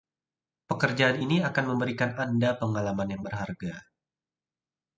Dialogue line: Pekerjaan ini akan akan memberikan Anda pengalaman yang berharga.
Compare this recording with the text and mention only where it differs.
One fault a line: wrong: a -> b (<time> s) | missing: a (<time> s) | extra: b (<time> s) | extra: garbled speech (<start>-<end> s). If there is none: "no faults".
missing: akan (1.7 s)